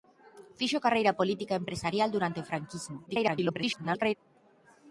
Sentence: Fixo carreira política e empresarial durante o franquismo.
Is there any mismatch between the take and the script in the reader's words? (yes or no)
yes